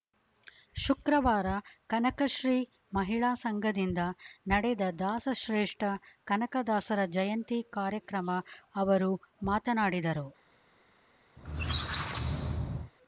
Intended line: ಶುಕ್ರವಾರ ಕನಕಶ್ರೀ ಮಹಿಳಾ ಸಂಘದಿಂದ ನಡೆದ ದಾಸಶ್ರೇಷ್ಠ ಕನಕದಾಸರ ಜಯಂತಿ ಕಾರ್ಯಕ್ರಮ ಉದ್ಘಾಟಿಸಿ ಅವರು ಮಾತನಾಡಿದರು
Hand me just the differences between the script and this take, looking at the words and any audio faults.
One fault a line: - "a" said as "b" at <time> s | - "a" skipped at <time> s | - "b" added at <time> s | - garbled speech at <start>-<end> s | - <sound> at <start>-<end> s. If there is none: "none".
- "ಉದ್ಘಾಟಿಸಿ" skipped at 8.3 s
- squeak at 11.4-12.9 s